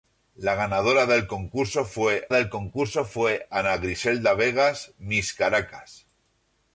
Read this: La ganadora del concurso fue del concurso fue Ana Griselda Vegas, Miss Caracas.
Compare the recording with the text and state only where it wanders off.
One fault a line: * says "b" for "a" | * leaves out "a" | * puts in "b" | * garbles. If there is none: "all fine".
all fine